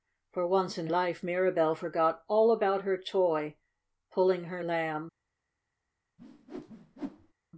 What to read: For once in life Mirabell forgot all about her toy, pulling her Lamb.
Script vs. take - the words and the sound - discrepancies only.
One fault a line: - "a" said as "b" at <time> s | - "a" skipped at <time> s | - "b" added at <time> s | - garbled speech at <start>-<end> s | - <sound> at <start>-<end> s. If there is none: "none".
- whoosh at 6.2-7.3 s